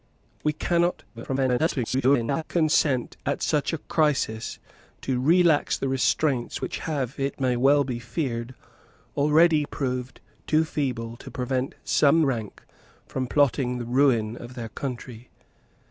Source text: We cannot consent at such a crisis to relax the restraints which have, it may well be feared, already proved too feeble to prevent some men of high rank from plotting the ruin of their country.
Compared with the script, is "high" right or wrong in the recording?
wrong